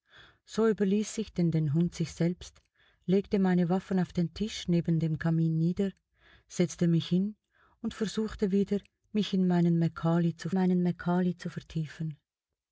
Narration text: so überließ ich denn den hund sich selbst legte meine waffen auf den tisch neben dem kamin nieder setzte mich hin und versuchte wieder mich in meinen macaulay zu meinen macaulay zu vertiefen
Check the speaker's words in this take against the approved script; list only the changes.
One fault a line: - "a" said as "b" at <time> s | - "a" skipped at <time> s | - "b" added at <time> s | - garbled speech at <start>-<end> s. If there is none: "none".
none